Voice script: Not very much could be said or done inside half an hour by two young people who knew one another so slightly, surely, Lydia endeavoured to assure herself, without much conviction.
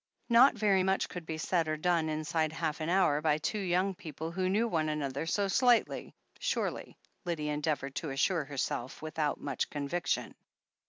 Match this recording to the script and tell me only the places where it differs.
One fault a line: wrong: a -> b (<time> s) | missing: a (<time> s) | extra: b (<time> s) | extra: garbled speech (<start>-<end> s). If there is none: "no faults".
no faults